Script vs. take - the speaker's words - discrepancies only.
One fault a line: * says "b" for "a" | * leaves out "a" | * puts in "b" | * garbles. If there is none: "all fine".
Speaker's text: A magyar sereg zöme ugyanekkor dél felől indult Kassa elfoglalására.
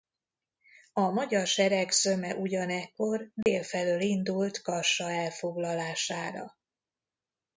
all fine